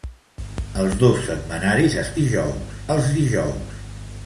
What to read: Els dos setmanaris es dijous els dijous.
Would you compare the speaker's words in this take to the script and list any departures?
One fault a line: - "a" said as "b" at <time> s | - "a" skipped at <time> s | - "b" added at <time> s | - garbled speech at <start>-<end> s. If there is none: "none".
none